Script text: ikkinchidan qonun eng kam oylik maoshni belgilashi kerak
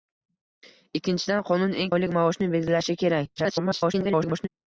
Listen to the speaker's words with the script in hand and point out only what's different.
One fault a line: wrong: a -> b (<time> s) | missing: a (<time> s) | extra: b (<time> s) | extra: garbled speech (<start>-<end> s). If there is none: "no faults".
missing: kam (1.9 s)
extra: garbled speech (3.4-4.5 s)